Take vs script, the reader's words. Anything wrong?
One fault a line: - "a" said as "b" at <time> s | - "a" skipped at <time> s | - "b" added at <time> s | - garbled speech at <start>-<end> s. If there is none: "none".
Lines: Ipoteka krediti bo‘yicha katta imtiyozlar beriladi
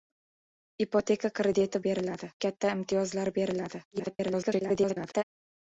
- "bo‘yicha" said as "beriladi" at 1.8 s
- garbled speech at 3.9-5.2 s